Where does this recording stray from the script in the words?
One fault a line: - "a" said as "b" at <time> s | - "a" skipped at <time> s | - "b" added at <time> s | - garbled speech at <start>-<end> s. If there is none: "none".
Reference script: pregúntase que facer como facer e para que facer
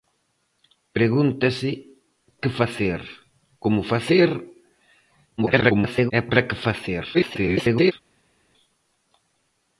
- garbled speech at 5.4-6.1 s
- garbled speech at 7.1-7.9 s